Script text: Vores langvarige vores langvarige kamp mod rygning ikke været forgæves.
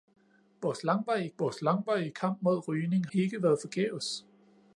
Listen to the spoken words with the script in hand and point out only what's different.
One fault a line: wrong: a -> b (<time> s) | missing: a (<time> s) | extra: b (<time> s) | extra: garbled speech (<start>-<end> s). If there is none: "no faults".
no faults